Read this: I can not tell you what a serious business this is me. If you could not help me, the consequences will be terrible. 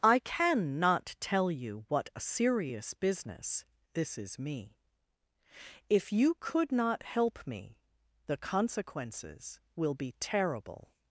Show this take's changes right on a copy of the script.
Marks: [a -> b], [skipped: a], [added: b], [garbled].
I can not tell you what a serious business this is me. If you could not help me, the consequences will be terrible.